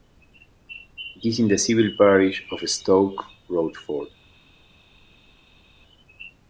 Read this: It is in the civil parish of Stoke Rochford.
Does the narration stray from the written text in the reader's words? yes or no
no